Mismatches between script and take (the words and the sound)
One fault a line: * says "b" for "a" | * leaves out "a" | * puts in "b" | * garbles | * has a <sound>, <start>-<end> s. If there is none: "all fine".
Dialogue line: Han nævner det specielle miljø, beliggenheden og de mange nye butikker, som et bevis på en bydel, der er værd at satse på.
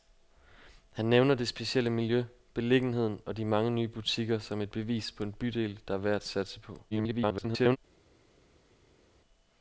* garbles